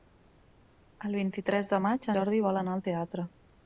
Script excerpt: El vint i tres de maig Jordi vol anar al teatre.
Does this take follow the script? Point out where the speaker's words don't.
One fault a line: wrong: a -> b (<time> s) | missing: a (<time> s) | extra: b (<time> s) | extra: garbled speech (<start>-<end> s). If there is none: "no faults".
no faults